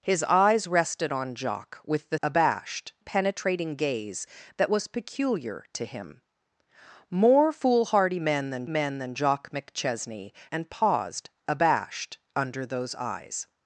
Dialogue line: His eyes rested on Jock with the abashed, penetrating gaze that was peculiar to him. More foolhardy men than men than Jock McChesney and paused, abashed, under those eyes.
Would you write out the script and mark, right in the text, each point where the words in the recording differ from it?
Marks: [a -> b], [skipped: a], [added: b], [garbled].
His eyes rested on Jock with the abashed, penetrating gaze that was peculiar to him. More foolhardy men than men than Jock McChesney and paused, abashed, under those eyes.